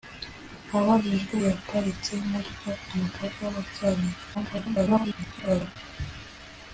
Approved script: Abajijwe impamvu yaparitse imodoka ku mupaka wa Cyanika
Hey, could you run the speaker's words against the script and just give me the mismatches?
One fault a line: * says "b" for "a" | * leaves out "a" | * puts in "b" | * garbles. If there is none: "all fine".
* leaves out "impamvu"
* garbles